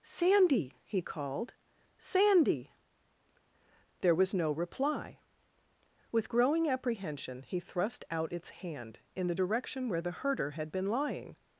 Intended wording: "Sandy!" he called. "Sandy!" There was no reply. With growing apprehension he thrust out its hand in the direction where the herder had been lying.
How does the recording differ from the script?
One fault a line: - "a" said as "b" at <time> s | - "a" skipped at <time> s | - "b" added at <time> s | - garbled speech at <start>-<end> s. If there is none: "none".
none